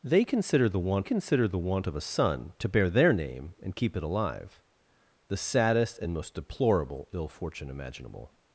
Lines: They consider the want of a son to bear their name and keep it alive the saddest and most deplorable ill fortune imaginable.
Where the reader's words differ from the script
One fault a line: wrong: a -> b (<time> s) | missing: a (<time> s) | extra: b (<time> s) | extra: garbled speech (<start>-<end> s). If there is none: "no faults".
extra: consider the want (1.0 s)